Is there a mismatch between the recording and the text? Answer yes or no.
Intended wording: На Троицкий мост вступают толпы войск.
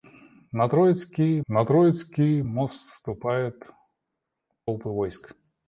yes